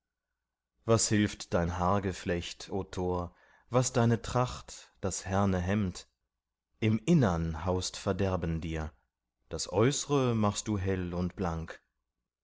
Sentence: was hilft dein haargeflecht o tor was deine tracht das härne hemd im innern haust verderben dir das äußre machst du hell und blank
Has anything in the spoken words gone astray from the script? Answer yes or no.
no